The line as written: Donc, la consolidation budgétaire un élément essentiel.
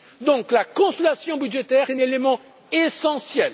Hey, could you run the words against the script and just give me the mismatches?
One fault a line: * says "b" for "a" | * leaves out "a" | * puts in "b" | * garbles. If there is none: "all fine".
all fine